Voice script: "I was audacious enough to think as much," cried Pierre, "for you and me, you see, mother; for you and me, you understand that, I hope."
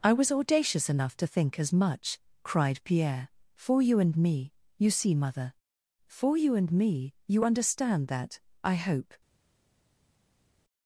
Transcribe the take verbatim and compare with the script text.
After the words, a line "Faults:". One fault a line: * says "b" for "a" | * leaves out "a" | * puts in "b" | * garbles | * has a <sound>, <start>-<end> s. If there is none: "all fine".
"I was audacious enough to think as much," cried Pierre, "for you and me, you see, mother; for you and me, you understand that, I hope."
Faults:
all fine